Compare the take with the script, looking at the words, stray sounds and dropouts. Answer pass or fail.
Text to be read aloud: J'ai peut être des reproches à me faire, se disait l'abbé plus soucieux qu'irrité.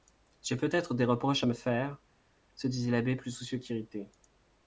pass